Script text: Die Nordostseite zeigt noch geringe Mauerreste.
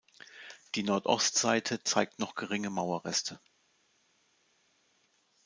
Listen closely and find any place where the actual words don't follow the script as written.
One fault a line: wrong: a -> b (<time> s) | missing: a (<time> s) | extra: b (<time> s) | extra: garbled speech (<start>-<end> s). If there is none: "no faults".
no faults